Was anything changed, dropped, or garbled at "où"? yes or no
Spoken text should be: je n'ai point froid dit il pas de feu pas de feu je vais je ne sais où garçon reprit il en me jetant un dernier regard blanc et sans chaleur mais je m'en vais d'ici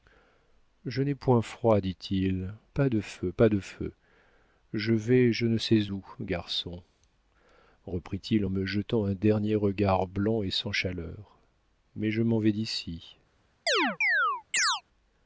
no